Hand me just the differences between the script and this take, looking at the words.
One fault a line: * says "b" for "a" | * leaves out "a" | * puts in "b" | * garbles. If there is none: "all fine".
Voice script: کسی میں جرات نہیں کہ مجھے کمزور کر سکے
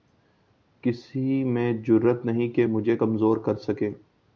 all fine